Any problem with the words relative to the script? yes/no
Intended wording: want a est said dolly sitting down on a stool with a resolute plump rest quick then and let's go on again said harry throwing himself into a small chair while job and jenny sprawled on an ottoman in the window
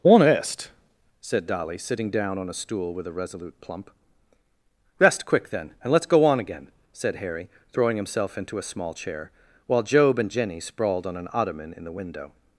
yes